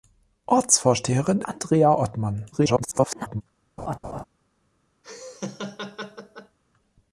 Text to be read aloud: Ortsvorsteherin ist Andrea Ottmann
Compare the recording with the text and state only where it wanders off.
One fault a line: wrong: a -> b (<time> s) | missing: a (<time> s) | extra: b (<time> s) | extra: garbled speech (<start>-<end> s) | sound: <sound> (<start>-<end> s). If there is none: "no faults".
missing: ist (1.4 s)
extra: garbled speech (2.5-3.4 s)
sound: laugh (3.8-4.2 s)
sound: laugh (5.0-6.6 s)